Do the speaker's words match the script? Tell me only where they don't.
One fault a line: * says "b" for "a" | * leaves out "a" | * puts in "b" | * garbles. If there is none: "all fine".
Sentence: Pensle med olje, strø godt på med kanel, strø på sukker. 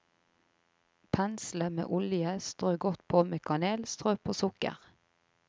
all fine